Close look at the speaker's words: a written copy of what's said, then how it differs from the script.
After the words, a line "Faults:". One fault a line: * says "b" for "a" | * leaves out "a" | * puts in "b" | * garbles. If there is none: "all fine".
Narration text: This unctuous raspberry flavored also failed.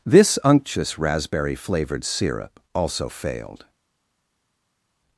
This unctuous raspberry flavored syrup also failed.
Faults:
* puts in "syrup"